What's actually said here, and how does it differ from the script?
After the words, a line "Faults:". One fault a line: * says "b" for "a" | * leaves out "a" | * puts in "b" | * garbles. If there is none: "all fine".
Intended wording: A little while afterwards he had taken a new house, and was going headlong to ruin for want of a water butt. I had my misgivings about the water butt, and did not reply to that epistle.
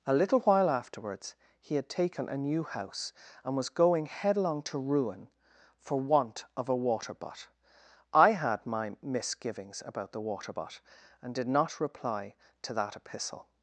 A little while afterwards he had taken a new house, and was going headlong to ruin for want of a water butt. I had my misgivings about the water butt, and did not reply to that epistle.
Faults:
all fine